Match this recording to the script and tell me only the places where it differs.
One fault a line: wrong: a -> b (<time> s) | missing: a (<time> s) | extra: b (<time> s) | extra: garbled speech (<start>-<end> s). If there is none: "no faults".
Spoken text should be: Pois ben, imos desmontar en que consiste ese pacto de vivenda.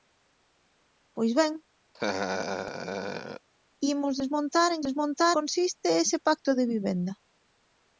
wrong: que -> desmontar (4.9 s)